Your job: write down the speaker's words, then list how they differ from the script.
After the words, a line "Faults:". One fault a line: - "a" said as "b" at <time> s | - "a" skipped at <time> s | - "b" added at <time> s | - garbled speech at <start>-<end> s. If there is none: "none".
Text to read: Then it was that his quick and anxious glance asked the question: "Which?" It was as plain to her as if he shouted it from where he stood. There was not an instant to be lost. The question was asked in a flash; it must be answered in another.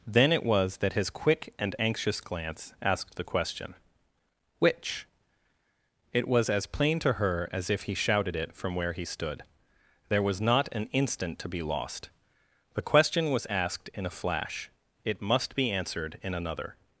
Then it was that his quick and anxious glance asked the question: "Which?" It was as plain to her as if he shouted it from where he stood. There was not an instant to be lost. The question was asked in a flash; it must be answered in another.
Faults:
none